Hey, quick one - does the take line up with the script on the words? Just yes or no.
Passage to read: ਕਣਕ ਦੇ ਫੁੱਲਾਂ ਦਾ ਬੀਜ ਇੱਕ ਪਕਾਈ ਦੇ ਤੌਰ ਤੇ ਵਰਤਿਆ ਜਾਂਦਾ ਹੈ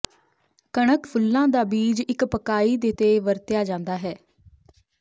no